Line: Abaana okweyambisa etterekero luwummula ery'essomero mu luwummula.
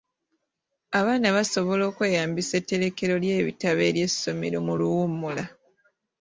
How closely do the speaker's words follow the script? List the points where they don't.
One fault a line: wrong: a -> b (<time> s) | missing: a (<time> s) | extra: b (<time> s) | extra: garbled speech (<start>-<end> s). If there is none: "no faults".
extra: basobola (1.4 s)
wrong: luwummula -> ly'ebitabo (3.2 s)